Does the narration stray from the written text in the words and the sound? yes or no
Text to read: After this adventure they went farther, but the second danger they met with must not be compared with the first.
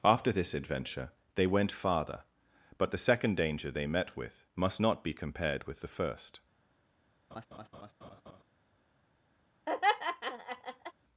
yes